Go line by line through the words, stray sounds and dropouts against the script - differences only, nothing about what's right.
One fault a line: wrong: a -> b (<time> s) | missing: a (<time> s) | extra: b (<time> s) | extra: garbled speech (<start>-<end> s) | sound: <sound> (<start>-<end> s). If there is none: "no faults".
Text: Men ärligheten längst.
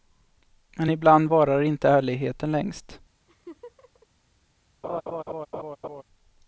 extra: ibland varar inte (0.9 s)
sound: laugh (3.3-4.1 s)
sound: laugh (4.8-6.0 s)